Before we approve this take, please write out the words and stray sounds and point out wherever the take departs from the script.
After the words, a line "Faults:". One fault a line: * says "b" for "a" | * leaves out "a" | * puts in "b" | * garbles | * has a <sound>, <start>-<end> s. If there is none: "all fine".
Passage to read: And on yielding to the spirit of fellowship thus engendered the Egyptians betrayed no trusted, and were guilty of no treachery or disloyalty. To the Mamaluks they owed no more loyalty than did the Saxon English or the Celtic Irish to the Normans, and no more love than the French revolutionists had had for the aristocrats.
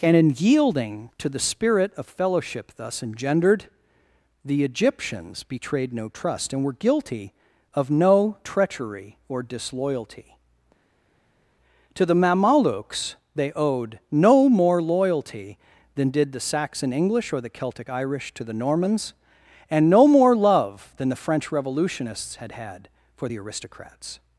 And in yielding to the spirit of fellowship thus engendered the Egyptians betrayed no trust, and were guilty of no treachery or disloyalty. To the Mamaluks they owed no more loyalty than did the Saxon English or the Celtic Irish to the Normans, and no more love than the French revolutionists had had for the aristocrats.
Faults:
* says "in" for "on"
* says "trust" for "trusted"